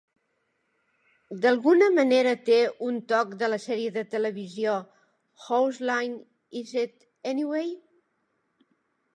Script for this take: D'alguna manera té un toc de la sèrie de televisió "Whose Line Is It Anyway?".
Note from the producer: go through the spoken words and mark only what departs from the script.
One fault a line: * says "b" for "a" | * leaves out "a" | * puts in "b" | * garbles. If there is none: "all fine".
all fine